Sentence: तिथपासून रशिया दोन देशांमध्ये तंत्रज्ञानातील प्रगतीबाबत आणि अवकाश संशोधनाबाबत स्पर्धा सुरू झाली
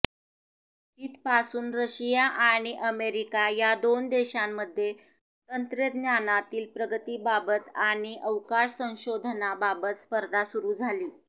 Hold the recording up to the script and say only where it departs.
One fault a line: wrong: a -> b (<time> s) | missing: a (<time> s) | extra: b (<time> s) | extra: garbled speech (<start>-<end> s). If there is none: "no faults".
extra: आणि अमेरिका या (2.4 s)